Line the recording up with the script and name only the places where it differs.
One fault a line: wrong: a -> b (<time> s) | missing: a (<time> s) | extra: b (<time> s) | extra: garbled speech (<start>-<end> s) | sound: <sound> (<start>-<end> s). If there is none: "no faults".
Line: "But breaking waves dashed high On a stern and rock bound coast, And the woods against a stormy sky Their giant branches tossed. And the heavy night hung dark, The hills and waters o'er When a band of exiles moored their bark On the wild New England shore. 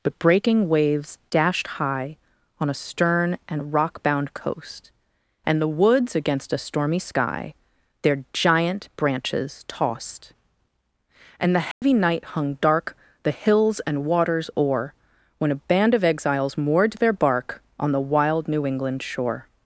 sound: dropout (11.7-11.8 s)